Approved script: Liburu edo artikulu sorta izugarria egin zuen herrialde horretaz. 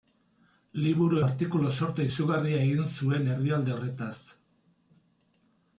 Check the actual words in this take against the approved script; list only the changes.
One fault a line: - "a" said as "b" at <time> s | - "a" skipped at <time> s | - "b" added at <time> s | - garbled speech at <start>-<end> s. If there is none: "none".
- "edo" skipped at 1.2 s